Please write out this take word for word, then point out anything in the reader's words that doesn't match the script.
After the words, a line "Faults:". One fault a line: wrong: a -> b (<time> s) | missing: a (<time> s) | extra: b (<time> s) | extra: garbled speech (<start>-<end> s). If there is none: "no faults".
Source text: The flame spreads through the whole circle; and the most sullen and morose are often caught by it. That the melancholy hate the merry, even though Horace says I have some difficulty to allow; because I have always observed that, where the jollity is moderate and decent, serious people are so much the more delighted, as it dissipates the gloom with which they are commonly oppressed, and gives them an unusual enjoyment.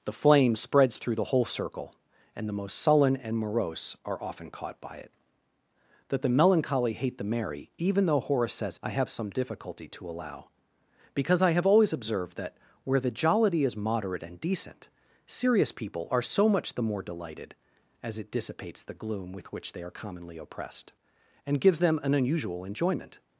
The flame spreads through the whole circle; and the most sullen and morose are often caught by it. That the melancholy hate the merry, even though Horace says I have some difficulty to allow; because I have always observed that, where the jollity is moderate and decent, serious people are so much the more delighted, as it dissipates the gloom with which they are commonly oppressed, and gives them an unusual enjoyment.
Faults:
no faults